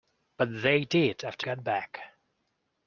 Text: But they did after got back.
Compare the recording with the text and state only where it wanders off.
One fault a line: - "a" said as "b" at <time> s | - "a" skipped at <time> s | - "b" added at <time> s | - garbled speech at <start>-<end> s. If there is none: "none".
none